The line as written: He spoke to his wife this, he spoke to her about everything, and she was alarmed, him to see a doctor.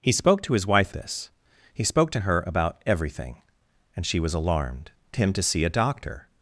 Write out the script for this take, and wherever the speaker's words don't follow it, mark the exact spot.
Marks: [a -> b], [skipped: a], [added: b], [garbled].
He spoke to his wife this, he spoke to her about everything, and she was alarmed, him to see a doctor.